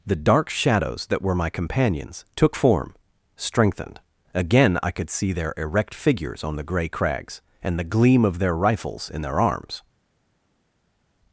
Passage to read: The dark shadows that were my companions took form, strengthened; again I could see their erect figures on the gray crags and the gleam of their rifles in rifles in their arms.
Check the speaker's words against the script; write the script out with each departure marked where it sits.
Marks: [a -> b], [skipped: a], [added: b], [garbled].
The dark shadows that were my companions took form, strengthened; again I could see their erect figures on the gray crags and the gleam of their rifles in [skipped: rifles in] their arms.